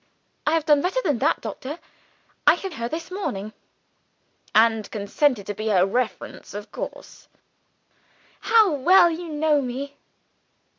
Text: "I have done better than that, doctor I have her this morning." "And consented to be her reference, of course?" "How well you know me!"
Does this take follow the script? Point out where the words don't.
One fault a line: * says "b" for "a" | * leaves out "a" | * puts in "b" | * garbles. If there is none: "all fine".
all fine